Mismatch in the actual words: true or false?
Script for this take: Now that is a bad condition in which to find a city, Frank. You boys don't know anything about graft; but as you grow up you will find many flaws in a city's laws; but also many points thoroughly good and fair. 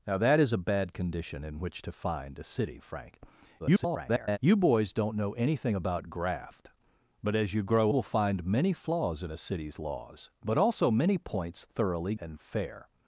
true